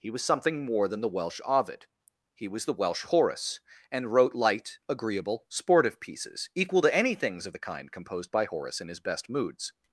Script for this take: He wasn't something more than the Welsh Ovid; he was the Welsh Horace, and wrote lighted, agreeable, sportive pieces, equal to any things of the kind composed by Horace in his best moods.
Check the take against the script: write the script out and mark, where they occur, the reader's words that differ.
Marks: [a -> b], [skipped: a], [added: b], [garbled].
He [wasn't -> was] something more than the Welsh Ovid; he was the Welsh Horace, and wrote [lighted, -> light] agreeable, sportive pieces, equal to any things of the kind composed by Horace in his best moods.